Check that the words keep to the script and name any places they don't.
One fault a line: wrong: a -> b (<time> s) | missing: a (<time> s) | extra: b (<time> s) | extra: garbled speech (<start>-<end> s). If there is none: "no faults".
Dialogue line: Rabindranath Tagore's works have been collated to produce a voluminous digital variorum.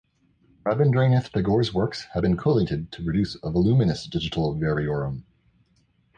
no faults